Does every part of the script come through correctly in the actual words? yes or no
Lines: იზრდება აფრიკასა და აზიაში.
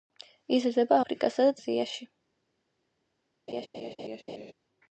yes